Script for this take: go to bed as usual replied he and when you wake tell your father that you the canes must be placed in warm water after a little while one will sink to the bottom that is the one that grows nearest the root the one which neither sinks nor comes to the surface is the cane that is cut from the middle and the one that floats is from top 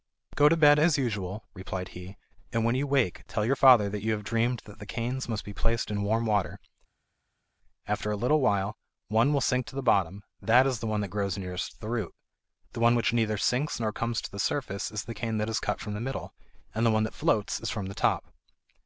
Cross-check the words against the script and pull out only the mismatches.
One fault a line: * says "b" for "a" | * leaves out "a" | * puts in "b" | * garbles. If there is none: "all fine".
* puts in "have dreamed that"
* puts in "the"